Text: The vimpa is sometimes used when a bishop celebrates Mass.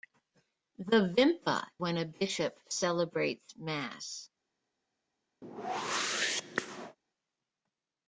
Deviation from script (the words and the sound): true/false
true